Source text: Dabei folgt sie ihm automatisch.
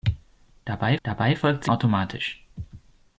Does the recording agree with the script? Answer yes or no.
no